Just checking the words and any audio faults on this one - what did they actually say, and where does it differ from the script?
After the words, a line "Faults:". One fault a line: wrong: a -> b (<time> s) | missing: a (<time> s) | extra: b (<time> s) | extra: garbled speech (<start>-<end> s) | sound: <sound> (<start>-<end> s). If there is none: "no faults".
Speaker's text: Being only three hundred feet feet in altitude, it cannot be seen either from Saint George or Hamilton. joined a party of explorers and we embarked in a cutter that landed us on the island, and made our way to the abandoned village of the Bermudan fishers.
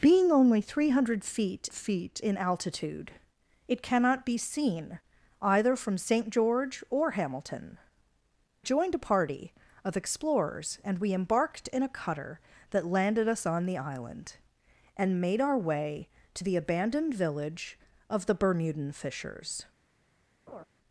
Being only three hundred feet feet in altitude, it cannot be seen either from Saint George or Hamilton. joined a party of explorers and we embarked in a cutter that landed us on the island, and made our way to the abandoned village of the Bermudan fishers.
Faults:
sound: laugh (20.5-20.6 s)